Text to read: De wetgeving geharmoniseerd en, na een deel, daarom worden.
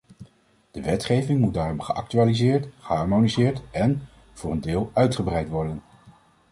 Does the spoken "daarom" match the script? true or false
false